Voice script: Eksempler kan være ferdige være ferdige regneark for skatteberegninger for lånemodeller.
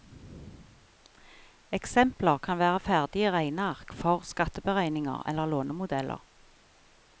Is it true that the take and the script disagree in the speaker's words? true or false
true